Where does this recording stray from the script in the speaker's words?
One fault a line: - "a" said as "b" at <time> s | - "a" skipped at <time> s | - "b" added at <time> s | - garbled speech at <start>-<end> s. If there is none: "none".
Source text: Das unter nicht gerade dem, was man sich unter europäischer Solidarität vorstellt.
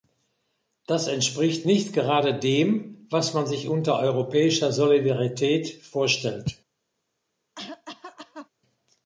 - "unter" said as "entspricht" at 1.1 s